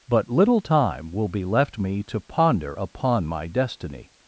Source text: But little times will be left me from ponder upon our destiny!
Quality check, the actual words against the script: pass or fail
fail